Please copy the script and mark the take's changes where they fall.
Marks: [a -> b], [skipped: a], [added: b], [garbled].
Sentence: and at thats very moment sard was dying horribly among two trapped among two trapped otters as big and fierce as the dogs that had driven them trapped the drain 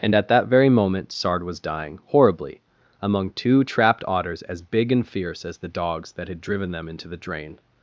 and at [thats -> that] very moment sard was dying horribly among two trapped [skipped: among two trapped] otters as big and fierce as the dogs that had driven them [trapped -> into] the drain